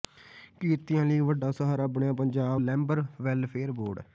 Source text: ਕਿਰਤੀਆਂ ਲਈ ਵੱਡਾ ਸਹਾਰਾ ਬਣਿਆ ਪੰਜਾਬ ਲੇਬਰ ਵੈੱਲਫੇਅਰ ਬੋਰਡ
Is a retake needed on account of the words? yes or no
no